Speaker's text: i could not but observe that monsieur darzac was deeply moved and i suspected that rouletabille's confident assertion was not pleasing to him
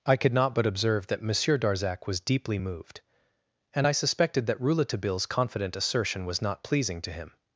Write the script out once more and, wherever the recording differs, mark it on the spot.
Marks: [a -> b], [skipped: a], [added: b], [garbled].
i could not but observe that monsieur darzac was deeply moved and i suspected that rouletabille's confident assertion was not pleasing to him